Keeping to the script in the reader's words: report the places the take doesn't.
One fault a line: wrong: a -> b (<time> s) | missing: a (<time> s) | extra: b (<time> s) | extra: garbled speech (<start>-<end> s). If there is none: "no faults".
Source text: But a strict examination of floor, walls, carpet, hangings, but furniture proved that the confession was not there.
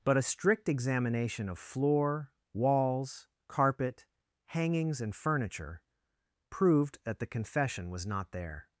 wrong: but -> and (5.0 s)